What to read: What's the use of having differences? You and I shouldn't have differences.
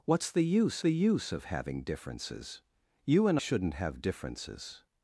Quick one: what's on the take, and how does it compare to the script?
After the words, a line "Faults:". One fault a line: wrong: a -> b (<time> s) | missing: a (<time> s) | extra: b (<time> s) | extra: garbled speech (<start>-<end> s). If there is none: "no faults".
What's the use the use of having differences? You and shouldn't have differences.
Faults:
extra: the use (0.8 s)
missing: I (3.4 s)